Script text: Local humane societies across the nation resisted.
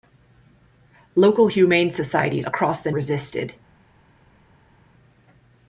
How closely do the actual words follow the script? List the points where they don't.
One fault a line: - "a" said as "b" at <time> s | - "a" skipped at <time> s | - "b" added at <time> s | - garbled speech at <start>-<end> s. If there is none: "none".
- "nation" skipped at 2.9 s